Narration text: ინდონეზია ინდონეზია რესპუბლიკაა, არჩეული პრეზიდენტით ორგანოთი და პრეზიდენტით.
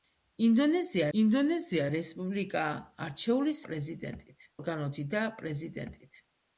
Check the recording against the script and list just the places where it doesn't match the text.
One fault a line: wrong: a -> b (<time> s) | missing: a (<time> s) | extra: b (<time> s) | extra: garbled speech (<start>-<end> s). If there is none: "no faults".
no faults